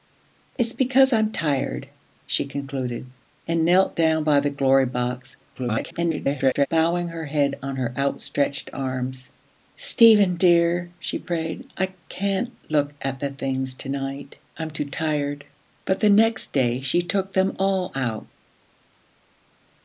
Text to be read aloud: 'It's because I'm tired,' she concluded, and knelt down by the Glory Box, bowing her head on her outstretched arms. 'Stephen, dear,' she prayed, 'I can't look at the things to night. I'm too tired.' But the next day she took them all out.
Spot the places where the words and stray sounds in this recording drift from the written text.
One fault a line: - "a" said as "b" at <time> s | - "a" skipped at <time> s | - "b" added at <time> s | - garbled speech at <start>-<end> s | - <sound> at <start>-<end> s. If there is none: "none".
- garbled speech at 5.6-6.7 s